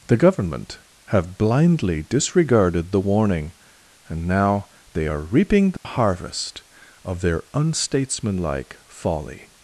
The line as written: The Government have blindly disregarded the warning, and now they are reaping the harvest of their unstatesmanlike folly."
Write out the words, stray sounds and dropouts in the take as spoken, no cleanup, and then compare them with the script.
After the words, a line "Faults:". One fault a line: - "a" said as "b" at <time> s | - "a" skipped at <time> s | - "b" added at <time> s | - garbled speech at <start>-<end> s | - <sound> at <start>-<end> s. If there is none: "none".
The Government have blindly disregarded the warning, and now they are reaping the harvest of their unstatesmanlike folly."
Faults:
- dropout at 5.8-5.9 s